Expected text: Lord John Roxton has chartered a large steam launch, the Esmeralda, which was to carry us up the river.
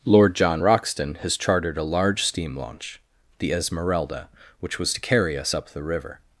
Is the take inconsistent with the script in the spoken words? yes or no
no